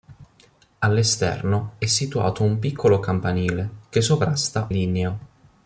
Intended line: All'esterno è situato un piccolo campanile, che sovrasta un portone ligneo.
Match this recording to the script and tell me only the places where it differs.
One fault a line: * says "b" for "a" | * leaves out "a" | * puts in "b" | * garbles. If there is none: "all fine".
* leaves out "un portone"